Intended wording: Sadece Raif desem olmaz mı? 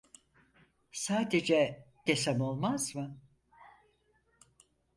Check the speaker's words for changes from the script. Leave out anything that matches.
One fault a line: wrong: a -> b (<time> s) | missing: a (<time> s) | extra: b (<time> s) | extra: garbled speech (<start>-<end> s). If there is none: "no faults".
missing: Raif (1.9 s)